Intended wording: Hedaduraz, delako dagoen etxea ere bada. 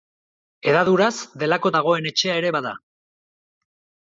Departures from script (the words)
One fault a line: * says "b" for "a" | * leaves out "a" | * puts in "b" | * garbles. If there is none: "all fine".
all fine